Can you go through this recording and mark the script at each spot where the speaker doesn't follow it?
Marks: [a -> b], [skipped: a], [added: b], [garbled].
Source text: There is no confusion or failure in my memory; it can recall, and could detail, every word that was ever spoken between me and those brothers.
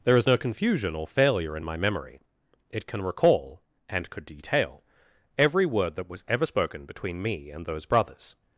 There is no confusion or failure in my memory; it can recall, and could detail, every word that was ever spoken between me and those brothers.